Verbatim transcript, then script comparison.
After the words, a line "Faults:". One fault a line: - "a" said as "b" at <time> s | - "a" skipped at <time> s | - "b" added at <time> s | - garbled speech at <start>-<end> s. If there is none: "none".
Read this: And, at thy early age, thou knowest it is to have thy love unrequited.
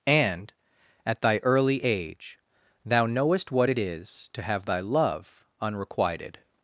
And, at thy early age, thou knowest what it is to have thy love unrequited.
Faults:
- "what" added at 3.5 s